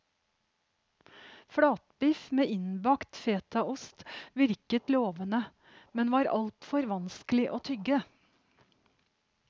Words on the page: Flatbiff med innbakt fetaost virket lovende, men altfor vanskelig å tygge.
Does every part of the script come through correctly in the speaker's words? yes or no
no